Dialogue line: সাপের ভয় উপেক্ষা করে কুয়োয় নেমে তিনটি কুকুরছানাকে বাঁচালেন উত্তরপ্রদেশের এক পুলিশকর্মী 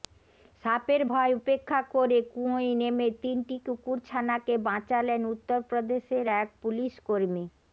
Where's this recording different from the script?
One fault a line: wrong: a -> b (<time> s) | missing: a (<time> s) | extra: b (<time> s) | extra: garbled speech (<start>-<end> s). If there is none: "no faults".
no faults